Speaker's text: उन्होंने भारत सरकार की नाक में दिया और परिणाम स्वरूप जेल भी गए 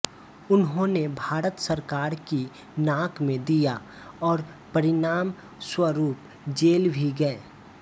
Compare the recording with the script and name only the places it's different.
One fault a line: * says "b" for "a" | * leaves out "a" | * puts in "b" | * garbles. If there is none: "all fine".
all fine